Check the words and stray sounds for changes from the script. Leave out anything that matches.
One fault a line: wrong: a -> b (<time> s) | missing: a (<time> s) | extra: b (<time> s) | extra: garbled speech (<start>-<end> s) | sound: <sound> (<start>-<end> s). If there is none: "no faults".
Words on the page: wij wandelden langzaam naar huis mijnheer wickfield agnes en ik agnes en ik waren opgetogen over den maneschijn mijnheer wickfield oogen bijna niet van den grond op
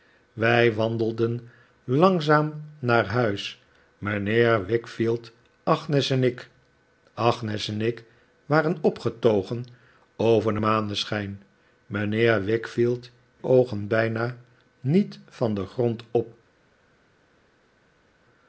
no faults